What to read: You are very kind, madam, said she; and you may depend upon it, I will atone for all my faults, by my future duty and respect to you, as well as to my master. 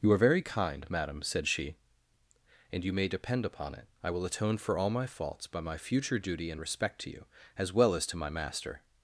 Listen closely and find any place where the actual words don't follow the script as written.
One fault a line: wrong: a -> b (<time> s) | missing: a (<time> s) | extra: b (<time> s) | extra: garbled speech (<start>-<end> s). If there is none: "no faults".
no faults